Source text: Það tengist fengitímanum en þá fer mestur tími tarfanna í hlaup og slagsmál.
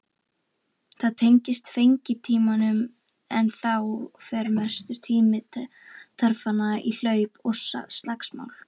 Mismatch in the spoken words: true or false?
false